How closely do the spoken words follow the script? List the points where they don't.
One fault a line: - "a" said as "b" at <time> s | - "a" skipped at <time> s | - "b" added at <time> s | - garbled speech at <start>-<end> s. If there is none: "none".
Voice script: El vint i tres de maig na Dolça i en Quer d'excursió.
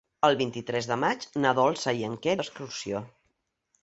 none